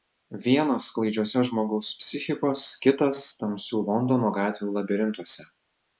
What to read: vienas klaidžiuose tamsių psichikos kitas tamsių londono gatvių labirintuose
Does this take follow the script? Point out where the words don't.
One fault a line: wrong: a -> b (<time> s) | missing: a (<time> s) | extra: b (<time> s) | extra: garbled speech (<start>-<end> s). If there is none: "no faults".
wrong: tamsių -> žmogaus (1.5 s)